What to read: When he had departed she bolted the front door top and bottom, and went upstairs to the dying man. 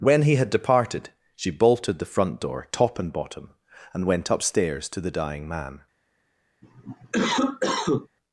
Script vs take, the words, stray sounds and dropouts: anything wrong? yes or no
yes